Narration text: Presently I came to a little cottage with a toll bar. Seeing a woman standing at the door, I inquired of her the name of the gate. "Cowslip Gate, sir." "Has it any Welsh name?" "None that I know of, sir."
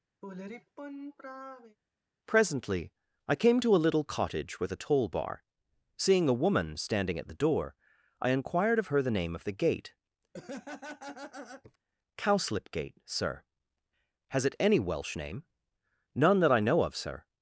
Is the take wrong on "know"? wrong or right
right